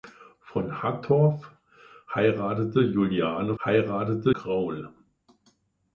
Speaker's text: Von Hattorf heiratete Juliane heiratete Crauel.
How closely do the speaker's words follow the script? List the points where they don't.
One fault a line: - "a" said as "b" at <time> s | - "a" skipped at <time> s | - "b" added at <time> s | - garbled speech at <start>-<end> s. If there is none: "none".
none